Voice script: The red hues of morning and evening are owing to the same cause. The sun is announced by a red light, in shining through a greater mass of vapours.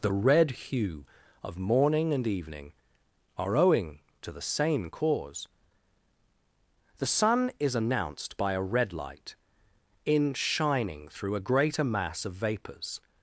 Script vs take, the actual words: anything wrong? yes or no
yes